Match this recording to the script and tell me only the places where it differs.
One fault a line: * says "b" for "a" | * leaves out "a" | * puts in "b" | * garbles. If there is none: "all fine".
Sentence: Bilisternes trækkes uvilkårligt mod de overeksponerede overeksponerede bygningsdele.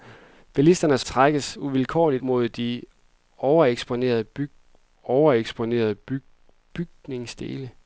all fine